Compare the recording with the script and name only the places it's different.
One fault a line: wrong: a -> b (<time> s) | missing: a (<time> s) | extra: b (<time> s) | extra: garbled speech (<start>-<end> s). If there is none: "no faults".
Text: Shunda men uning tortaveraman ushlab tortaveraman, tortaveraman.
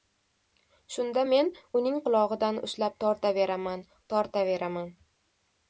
wrong: tortaveraman -> qulog‘idan (2.1 s)